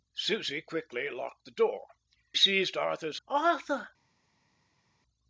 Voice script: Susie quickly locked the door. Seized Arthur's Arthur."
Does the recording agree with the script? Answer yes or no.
yes